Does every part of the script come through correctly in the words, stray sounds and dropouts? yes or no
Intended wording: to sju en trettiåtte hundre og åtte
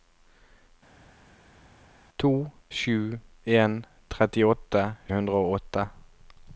yes